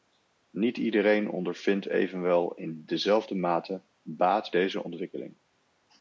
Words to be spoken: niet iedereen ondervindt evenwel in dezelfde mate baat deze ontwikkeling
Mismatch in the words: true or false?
false